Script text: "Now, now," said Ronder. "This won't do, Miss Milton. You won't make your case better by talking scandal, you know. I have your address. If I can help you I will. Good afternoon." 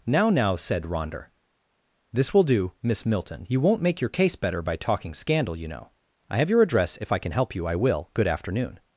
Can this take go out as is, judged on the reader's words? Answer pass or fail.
fail